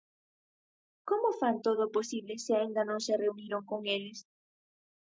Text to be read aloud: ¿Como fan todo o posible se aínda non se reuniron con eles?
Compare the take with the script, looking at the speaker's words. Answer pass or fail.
pass